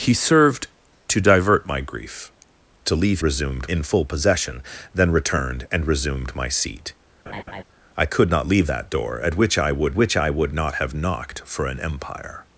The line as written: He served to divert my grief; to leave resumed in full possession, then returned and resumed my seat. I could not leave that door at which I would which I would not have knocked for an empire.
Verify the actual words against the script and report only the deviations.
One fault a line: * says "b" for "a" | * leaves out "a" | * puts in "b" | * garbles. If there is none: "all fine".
all fine